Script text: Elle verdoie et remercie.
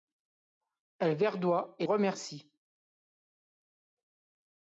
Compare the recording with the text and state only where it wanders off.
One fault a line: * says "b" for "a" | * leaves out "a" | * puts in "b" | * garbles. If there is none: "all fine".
all fine